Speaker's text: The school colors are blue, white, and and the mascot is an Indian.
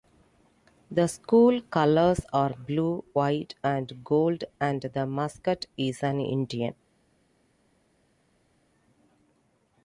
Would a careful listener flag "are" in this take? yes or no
no